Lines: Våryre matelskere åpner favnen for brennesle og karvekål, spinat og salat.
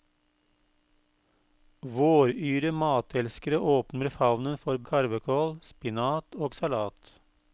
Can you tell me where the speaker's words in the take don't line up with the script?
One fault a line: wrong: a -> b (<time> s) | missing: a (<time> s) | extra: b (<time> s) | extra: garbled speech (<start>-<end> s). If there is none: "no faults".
missing: brennesle (4.8 s)